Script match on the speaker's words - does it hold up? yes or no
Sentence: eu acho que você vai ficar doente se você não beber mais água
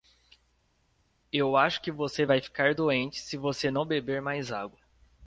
yes